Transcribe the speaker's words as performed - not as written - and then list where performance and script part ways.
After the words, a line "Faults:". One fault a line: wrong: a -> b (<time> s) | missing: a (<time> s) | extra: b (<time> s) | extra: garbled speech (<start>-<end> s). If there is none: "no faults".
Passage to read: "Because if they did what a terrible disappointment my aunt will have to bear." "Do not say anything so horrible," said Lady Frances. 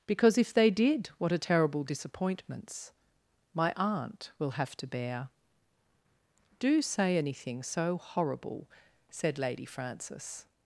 "Because if they did what a terrible disappointments my aunt will have to bear." "Do say anything so horrible," said Lady Frances.
Faults:
wrong: disappointment -> disappointments (1.8 s)
missing: not (6.8 s)